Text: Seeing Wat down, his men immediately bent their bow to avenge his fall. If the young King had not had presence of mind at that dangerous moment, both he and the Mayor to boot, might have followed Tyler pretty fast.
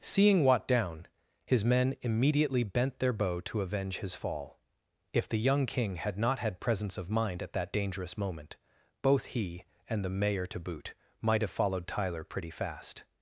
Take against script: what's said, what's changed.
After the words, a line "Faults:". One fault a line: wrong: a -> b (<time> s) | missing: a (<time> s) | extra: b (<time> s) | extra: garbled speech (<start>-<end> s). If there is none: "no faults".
Seeing Wat down, his men immediately bent their bow to avenge his fall. If the young King had not had presence of mind at that dangerous moment, both he and the Mayor to boot, might have followed Tyler pretty fast.
Faults:
no faults